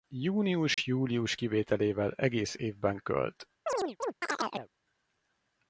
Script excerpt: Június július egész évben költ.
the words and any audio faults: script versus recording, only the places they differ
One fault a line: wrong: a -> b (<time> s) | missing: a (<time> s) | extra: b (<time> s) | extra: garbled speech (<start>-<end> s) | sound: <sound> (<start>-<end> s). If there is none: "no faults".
sound: dropout (0.7-0.8 s)
extra: kivételével (1.3 s)
sound: chirp (3.7-4.7 s)